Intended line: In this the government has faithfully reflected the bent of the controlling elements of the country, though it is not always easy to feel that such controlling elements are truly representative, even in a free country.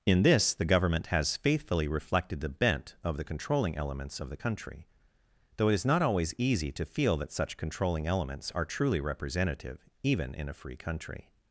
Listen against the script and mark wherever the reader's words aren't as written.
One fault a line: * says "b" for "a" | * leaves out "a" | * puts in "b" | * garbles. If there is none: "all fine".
all fine